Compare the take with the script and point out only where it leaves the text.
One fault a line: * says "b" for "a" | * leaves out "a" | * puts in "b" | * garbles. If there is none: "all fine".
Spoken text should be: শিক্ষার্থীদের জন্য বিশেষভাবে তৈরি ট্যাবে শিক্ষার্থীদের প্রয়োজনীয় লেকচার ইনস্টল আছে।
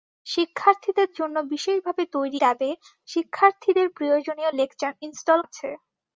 all fine